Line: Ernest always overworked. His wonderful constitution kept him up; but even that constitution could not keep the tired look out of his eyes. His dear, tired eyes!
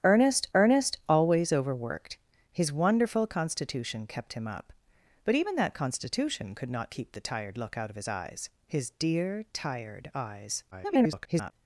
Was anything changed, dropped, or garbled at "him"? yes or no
no